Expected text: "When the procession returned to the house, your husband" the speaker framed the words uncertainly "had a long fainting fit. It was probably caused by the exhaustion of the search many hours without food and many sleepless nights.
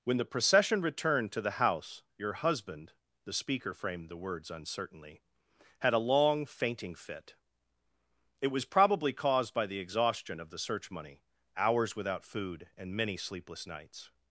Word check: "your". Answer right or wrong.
right